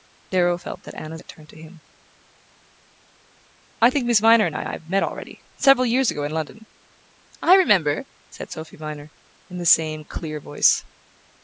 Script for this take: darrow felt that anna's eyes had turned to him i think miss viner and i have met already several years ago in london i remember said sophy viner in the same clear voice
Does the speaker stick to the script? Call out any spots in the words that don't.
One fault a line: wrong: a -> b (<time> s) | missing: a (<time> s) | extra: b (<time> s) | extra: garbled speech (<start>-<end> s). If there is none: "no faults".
missing: eyes (1.2 s)
extra: i (4.6 s)